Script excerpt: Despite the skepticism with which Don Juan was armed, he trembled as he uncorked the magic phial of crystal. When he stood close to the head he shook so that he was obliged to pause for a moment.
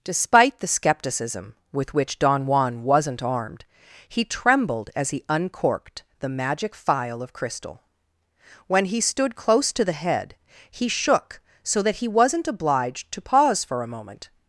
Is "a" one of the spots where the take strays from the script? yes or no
no